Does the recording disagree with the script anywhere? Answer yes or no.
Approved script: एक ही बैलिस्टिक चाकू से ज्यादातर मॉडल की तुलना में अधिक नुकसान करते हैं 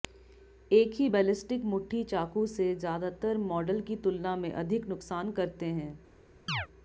yes